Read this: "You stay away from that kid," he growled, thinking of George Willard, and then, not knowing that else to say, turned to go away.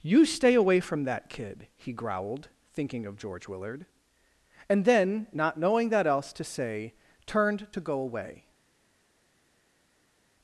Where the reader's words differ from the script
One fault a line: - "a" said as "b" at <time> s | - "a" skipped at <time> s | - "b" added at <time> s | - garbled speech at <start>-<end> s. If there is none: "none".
none